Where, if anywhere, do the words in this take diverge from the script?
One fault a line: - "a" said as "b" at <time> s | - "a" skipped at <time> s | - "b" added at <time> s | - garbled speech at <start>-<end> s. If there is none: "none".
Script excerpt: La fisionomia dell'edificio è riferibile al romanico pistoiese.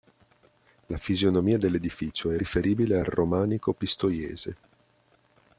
none